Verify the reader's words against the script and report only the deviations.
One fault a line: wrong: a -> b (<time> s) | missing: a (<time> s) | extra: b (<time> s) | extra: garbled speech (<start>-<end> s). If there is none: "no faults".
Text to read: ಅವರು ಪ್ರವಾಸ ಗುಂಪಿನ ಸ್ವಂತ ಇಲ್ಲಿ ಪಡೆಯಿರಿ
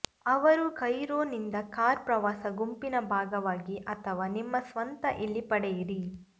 extra: ಕೈರೋ ನಿಂದ ಕಾರ್ (0.8 s)
extra: ಭಾಗವಾಗಿ ಅಥವಾ ನಿಮ್ಮ (3.1 s)